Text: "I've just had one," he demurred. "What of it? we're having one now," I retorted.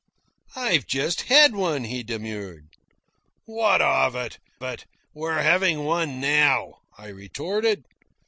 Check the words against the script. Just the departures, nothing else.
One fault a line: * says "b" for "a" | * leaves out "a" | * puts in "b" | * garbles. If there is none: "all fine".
* puts in "it"